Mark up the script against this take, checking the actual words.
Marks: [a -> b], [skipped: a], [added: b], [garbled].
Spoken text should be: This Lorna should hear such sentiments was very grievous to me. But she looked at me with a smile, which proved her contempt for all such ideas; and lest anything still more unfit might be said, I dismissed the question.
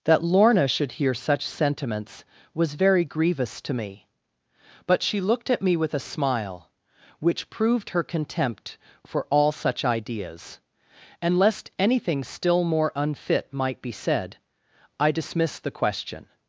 [This -> That] Lorna should hear such sentiments was very grievous to me. But she looked at me with a smile, which proved her contempt for all such ideas; and lest anything still more unfit might be said, I dismissed the question.